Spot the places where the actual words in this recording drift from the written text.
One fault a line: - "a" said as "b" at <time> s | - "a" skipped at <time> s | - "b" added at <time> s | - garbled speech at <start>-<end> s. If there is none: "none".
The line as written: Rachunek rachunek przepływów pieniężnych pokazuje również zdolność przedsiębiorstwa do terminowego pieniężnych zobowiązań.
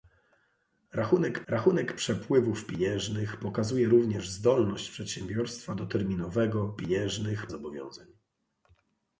none